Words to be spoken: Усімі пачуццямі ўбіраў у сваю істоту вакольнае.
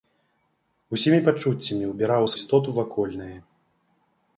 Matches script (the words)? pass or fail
fail